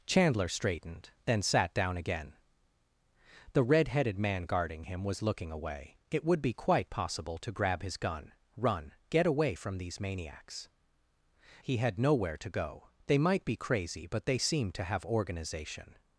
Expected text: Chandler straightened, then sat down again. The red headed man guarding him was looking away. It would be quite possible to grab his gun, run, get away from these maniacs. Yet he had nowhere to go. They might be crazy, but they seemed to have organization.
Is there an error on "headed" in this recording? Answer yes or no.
no